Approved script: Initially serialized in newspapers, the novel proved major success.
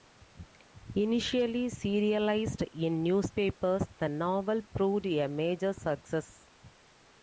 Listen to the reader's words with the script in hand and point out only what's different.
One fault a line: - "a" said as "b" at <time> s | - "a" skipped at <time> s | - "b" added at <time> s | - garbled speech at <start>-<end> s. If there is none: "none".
- "a" added at 5.0 s